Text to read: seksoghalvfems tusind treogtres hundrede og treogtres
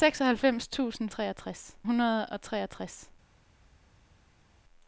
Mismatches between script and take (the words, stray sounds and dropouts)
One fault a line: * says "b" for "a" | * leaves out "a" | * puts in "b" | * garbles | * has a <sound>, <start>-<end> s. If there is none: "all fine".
all fine